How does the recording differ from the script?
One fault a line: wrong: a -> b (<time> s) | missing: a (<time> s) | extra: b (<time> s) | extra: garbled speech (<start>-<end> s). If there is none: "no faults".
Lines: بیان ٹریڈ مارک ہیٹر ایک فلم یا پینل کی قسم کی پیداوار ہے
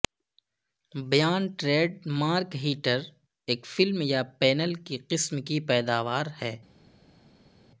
no faults